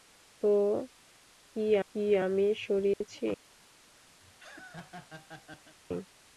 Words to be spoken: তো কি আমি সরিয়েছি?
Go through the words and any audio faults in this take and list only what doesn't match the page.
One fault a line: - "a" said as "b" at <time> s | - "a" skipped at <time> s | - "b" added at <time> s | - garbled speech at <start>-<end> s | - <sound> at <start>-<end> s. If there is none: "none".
- "কি" added at 1.9 s
- dropout at 2.9-3.0 s
- laugh at 4.2-5.8 s